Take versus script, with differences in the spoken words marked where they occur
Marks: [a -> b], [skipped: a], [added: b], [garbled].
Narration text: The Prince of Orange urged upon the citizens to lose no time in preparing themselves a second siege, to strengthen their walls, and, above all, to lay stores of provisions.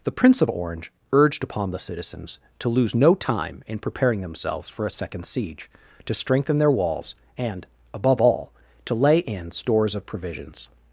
The Prince of Orange urged upon the citizens to lose no time in preparing themselves [added: for] a second siege, to strengthen their walls, and, above all, to lay [added: in] stores of provisions.